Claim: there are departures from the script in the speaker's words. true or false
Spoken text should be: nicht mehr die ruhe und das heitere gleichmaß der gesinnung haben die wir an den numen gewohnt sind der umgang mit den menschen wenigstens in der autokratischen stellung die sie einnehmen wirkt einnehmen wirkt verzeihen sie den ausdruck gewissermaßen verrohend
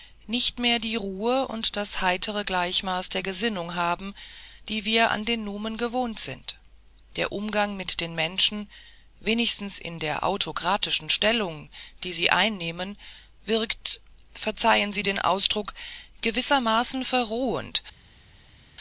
true